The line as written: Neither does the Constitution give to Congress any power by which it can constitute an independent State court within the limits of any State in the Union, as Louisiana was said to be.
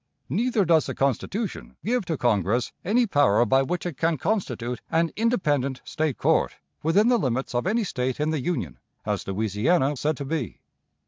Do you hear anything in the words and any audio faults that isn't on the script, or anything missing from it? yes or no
yes